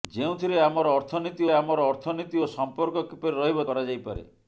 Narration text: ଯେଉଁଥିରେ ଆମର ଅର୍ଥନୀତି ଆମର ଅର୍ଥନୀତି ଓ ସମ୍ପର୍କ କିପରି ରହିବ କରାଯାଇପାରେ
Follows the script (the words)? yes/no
yes